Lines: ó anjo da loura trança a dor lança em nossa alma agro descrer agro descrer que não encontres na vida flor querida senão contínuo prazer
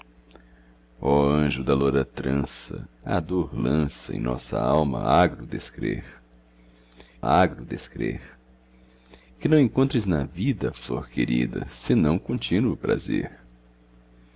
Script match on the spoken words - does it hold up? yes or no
yes